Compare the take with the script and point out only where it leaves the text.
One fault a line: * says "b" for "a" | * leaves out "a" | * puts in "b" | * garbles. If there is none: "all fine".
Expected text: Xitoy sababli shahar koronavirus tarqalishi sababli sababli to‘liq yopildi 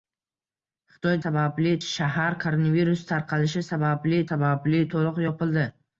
all fine